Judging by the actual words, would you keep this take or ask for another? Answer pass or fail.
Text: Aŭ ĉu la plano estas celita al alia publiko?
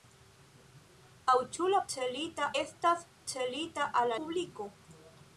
fail